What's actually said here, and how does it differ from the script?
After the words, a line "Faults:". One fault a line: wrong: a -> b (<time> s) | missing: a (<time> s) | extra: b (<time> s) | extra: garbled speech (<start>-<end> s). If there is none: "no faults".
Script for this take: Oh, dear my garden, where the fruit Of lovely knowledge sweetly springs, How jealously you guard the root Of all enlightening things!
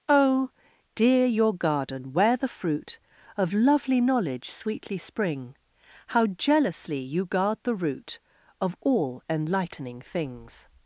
Oh, dear your garden, where the fruit Of lovely knowledge sweetly spring, How jealously you guard the root Of all enlightening things!
Faults:
wrong: my -> your (1.2 s)
wrong: springs -> spring (5.0 s)